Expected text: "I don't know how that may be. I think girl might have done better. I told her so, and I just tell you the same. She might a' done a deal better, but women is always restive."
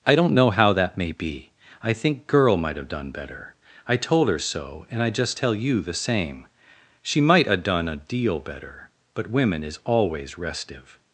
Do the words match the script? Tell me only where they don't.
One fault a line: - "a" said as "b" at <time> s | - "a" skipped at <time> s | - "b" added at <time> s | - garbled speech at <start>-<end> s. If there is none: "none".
none